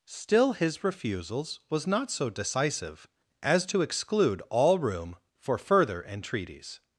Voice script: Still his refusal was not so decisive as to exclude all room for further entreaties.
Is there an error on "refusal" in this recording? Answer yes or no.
yes